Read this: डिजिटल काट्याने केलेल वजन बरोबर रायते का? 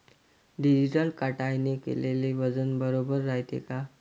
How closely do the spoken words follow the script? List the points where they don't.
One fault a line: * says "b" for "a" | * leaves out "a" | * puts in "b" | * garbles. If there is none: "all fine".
all fine